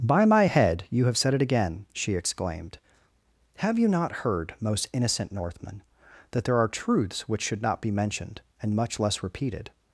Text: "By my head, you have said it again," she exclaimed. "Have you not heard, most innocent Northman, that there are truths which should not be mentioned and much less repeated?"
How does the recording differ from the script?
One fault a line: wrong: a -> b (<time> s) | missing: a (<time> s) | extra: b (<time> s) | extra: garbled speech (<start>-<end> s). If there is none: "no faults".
no faults